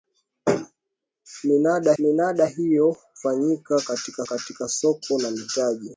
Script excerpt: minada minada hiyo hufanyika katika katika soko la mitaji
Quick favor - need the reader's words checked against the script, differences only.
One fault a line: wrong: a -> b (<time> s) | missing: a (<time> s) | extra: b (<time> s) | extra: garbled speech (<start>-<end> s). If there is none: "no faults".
no faults